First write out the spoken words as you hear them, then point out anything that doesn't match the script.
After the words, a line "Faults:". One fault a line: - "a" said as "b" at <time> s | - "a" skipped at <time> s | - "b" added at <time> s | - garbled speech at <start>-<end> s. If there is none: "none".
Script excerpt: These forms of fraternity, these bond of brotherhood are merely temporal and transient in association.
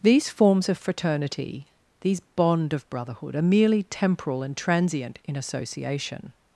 These forms of fraternity, these bond of brotherhood are merely temporal and transient in association.
Faults:
none